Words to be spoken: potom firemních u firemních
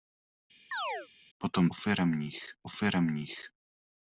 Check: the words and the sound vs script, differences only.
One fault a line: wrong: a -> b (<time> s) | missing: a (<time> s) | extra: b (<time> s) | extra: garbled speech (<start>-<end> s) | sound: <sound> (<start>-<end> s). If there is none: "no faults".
sound: chirp (0.7-1.1 s)